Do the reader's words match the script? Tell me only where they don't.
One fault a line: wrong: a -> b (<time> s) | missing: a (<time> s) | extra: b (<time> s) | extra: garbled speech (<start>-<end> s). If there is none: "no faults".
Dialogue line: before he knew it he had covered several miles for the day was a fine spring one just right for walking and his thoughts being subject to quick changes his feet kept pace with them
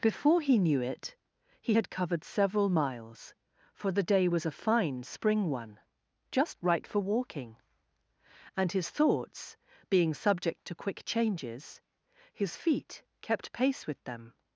no faults